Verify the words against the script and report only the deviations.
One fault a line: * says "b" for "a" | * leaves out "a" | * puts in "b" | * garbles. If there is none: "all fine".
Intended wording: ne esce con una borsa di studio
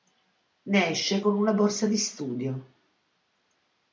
all fine